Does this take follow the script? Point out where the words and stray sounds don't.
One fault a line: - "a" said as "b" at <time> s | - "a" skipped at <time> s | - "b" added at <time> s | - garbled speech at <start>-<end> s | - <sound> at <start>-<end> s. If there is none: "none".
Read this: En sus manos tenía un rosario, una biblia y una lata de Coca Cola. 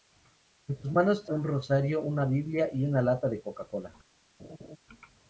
- "tenía" skipped at 1.2 s
- laugh at 4.4-4.8 s